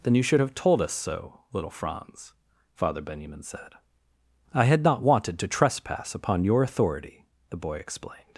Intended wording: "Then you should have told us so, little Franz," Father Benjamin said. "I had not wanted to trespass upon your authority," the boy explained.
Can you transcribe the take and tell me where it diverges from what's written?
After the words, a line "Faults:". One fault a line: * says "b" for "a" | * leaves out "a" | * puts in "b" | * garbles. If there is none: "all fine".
"Then you should have told us so, little Franz," Father Benjamin said. "I had not wanted to trespass upon your authority," the boy explained.
Faults:
all fine